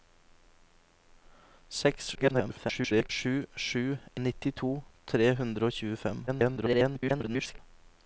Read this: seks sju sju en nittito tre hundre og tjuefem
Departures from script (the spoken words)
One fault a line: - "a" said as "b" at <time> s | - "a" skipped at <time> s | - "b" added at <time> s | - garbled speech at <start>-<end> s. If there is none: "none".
- garbled speech at 2.1-3.1 s
- "en" skipped at 3.8 s
- garbled speech at 6.3-7.6 s